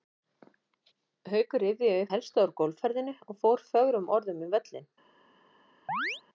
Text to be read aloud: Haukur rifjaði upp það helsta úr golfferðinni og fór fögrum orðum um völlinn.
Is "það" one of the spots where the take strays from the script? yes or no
yes